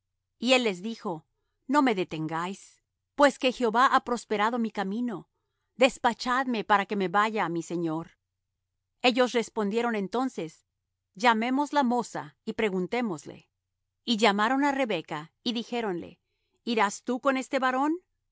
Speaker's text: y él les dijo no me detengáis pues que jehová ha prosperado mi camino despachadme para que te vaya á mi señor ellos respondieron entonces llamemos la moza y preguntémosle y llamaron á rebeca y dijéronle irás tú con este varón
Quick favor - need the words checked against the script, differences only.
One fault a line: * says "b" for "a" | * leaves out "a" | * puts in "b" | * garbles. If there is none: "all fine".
* says "me" for "te"